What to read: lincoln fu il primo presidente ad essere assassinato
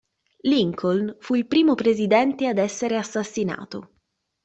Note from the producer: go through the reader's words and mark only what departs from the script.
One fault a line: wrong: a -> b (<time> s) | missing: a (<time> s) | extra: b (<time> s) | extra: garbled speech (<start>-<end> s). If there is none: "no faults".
no faults